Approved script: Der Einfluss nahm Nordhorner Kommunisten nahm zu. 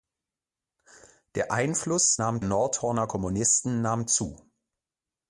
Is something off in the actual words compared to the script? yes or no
no